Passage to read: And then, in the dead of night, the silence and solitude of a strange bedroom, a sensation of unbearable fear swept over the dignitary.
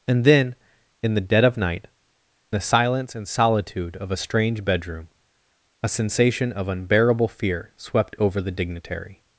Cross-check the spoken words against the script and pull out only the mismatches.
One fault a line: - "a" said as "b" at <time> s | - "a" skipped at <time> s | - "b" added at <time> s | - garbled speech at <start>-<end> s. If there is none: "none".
none